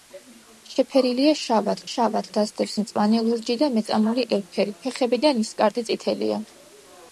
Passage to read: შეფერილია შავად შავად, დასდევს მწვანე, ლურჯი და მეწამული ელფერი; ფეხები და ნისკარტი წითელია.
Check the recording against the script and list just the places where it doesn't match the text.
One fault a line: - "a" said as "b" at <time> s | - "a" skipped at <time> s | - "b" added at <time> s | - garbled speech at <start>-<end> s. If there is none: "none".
none